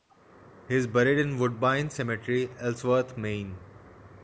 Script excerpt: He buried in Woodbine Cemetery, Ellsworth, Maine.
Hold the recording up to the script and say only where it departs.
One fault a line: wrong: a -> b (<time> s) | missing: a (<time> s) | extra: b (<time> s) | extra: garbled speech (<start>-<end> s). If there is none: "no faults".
extra: is (0.7 s)